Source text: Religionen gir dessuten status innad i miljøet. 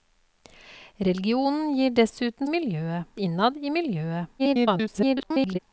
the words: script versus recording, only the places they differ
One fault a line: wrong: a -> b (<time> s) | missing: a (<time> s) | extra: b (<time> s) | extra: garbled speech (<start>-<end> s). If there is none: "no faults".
wrong: status -> miljøet (2.5 s)
extra: garbled speech (4.4-5.6 s)